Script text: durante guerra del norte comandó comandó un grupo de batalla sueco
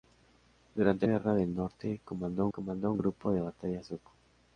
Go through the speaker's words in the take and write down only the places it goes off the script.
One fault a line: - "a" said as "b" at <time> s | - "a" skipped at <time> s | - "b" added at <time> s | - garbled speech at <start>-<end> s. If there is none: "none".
none